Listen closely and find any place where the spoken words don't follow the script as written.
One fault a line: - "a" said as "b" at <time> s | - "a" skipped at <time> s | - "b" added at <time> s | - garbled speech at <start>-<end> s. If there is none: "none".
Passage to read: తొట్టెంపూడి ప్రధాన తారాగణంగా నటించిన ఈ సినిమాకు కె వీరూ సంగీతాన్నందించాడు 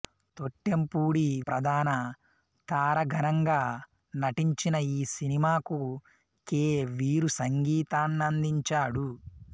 none